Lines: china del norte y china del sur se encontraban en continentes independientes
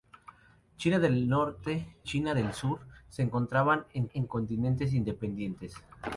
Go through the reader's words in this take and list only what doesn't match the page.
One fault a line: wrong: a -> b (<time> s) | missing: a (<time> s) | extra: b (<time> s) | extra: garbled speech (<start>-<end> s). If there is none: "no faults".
missing: y (1.9 s)
extra: en (4.1 s)